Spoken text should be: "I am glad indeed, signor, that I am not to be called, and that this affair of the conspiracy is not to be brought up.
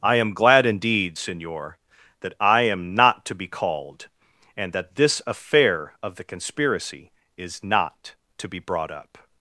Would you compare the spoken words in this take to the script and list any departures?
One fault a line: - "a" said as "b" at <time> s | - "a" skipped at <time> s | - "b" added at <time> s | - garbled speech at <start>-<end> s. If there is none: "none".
none